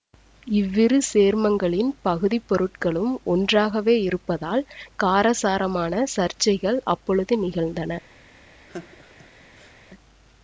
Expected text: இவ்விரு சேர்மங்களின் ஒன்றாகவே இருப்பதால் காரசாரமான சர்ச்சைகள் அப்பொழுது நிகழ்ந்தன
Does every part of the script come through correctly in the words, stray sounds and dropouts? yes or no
no